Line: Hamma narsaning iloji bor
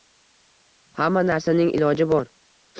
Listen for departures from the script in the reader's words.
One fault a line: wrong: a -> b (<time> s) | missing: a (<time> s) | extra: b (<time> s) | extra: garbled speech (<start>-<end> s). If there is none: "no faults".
no faults